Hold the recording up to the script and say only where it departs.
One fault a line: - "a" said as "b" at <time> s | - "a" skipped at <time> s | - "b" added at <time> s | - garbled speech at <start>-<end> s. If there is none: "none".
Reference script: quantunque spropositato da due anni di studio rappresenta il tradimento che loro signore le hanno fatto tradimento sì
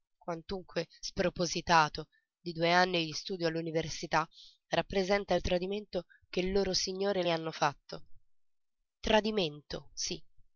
- "da" said as "di" at 2.4 s
- "all'università" added at 3.5 s